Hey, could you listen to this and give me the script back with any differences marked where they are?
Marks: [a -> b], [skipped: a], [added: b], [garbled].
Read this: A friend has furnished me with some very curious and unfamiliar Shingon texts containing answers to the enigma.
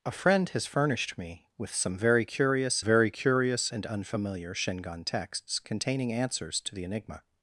A friend has furnished me with some very curious [added: very curious] and unfamiliar Shingon texts containing answers to the enigma.